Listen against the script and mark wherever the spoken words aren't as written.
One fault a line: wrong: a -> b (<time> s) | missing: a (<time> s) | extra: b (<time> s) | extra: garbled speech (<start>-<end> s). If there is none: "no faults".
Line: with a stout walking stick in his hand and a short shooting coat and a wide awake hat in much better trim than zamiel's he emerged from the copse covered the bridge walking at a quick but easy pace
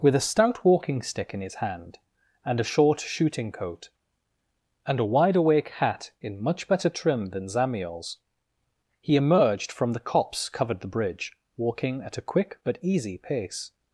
no faults